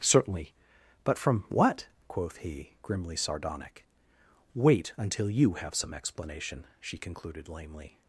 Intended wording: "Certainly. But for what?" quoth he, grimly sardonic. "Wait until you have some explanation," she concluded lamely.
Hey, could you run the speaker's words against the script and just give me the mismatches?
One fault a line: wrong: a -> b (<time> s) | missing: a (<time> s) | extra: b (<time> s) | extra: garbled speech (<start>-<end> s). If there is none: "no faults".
wrong: for -> from (1.2 s)